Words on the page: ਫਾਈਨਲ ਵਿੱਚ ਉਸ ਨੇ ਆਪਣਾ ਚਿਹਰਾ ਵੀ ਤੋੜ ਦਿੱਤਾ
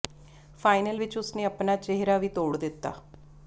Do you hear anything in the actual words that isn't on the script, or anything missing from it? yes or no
no